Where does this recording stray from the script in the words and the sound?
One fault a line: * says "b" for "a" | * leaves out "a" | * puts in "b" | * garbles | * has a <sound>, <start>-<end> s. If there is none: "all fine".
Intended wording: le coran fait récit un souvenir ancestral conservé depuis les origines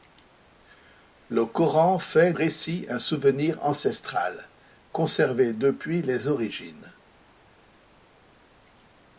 all fine